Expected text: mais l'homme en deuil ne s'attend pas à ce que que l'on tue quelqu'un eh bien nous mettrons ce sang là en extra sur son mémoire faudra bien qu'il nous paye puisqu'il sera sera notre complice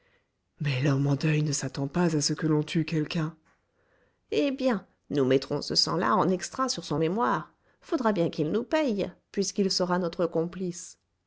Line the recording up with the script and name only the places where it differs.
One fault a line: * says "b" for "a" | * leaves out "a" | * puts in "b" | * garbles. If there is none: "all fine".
* leaves out "que"
* leaves out "sera"